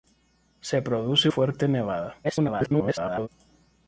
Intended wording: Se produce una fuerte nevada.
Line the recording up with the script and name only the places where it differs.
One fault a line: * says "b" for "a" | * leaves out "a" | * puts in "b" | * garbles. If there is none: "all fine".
* leaves out "una"
* garbles